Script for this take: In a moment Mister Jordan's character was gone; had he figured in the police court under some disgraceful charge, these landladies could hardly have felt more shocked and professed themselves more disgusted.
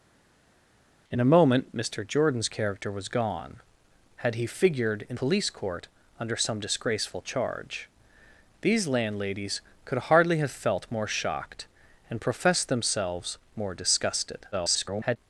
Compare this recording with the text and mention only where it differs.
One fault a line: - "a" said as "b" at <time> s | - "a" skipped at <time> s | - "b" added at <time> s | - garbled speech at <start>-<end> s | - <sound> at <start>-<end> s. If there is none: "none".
- "the" skipped at 5.2 s
- garbled speech at 14.5-15.2 s